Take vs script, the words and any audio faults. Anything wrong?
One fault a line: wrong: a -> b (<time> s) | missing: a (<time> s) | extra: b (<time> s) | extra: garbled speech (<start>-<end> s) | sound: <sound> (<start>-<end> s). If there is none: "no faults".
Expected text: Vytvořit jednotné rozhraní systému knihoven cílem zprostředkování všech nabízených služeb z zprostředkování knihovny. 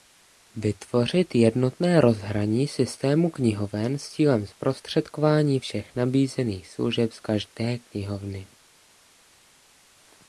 extra: s (4.0 s)
wrong: zprostředkování -> každé (7.2 s)